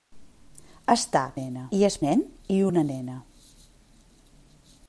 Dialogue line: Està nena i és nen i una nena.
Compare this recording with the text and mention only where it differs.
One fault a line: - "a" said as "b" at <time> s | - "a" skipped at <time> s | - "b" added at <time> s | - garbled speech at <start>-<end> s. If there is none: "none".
none